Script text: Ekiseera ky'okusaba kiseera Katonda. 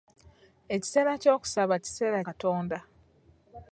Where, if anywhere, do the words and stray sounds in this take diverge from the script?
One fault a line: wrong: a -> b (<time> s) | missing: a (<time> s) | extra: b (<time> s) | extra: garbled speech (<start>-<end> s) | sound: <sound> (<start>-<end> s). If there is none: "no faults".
no faults